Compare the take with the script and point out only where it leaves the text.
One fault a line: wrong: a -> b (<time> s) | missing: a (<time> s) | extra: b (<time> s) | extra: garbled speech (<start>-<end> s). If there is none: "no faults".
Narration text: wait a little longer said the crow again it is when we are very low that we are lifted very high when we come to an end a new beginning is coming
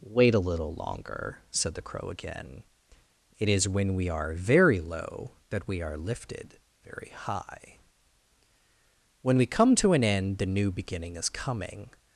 wrong: a -> the (10.4 s)